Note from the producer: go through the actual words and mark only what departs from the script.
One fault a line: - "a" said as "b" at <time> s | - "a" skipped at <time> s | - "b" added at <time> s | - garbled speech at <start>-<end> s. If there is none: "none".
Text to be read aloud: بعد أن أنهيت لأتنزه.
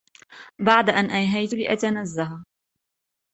none